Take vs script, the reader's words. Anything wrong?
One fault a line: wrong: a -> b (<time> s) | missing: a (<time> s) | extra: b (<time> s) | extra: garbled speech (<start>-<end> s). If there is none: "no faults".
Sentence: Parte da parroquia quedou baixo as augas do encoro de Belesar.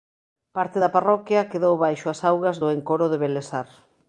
no faults